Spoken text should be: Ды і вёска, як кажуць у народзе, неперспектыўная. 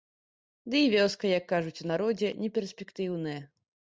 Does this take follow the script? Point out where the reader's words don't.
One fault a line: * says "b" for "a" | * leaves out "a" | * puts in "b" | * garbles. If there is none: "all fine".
all fine